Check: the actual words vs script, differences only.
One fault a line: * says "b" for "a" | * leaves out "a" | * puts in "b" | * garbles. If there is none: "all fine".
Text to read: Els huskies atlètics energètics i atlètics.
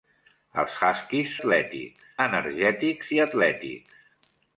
all fine